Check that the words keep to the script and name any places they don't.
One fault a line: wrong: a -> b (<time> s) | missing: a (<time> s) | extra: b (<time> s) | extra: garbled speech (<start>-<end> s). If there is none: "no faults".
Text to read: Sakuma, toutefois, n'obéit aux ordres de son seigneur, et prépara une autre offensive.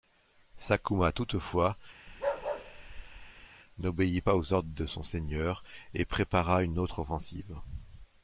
extra: pas (4.2 s)